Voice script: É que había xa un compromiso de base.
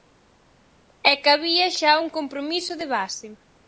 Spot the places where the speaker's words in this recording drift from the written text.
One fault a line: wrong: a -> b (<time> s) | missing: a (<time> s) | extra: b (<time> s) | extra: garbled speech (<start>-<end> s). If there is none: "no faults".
no faults